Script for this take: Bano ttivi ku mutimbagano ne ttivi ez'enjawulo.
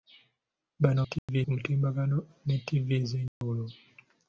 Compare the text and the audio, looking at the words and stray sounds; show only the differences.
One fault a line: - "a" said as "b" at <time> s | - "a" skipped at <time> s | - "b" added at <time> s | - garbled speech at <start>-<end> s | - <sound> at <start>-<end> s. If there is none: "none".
- dropout at 1.2-1.3 s
- dropout at 3.3-3.4 s